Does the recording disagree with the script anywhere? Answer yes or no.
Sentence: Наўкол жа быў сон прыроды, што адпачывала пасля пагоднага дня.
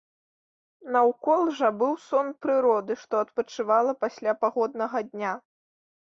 no